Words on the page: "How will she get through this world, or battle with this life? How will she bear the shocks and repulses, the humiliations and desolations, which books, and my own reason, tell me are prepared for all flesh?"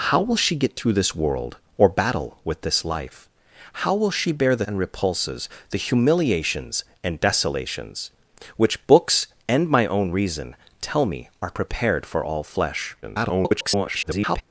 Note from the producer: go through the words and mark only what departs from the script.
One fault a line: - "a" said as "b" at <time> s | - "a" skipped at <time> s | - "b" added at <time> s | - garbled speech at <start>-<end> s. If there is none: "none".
- "shocks" skipped at 4.7 s
- garbled speech at 13.0-14.4 s